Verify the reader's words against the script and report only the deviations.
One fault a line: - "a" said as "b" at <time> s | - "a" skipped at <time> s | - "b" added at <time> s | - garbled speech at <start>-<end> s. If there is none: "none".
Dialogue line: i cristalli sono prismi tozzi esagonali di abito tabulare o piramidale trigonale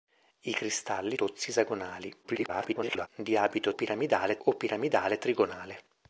- "sono prismi" skipped at 1.1 s
- garbled speech at 2.2-3.1 s
- "tabulare" said as "piramidale" at 3.7 s